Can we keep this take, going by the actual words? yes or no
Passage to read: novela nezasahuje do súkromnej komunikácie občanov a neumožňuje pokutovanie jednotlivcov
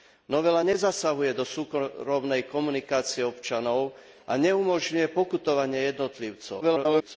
no